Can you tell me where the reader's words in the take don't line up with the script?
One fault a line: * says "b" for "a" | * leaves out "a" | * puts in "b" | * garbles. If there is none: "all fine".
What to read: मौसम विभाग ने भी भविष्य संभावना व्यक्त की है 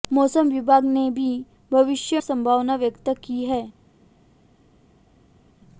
all fine